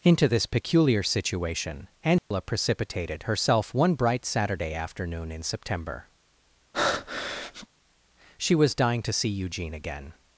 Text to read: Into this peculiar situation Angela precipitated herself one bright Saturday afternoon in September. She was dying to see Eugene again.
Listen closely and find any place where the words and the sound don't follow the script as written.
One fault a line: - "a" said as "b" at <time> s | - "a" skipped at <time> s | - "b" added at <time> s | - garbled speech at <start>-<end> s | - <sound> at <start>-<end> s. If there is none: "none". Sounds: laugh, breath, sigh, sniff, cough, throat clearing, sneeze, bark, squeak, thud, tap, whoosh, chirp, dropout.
- dropout at 2.2-2.3 s
- breath at 6.7-7.7 s